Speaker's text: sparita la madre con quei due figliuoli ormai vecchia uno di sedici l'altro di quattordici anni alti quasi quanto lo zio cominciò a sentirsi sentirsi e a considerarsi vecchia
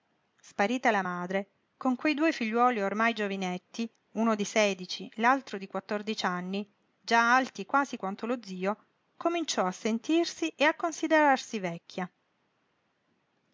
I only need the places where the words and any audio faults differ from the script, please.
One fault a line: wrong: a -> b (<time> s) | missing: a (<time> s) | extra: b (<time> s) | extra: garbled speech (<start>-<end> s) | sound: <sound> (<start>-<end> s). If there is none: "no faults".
wrong: vecchia -> giovinetti (3.1 s)
extra: già (7.0 s)
missing: sentirsi (10.5 s)